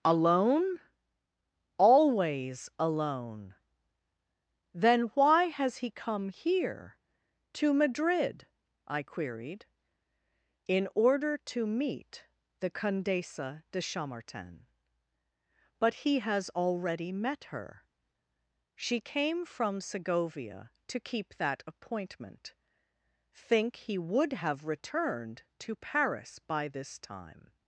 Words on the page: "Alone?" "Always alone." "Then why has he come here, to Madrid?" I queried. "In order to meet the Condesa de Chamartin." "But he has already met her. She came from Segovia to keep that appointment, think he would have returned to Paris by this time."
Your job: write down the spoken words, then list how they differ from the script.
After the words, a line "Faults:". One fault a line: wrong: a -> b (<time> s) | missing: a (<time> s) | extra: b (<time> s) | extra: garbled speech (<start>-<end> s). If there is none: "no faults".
"Alone?" "Always alone." "Then why has he come here, to Madrid?" I queried. "In order to meet the Condesa de Chamartin." "But he has already met her. She came from Segovia to keep that appointment, think he would have returned to Paris by this time."
Faults:
no faults